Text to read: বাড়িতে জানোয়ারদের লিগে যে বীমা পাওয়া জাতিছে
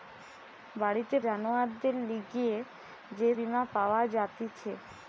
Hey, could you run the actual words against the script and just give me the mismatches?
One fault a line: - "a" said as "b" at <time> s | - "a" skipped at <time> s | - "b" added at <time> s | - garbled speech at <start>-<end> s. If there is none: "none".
none